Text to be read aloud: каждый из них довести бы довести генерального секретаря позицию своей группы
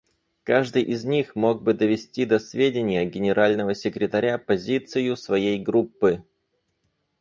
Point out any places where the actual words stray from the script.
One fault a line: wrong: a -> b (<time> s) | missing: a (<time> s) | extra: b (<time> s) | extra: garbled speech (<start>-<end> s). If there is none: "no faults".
wrong: довести -> мог (1.3 s)
extra: до сведения (2.2 s)